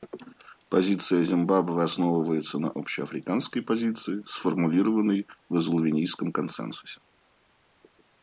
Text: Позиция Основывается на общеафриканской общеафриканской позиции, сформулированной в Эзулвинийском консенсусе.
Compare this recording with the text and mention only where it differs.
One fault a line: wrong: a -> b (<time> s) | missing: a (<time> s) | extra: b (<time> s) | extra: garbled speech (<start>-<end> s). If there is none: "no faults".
extra: Зимбабве (1.2 s)
missing: общеафриканской (3.6 s)